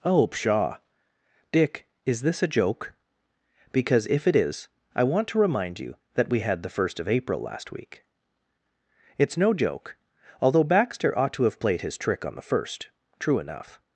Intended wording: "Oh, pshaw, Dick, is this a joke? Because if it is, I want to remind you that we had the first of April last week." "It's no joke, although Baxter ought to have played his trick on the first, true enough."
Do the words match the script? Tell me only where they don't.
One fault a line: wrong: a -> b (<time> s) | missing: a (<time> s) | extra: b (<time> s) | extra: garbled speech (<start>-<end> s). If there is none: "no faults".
no faults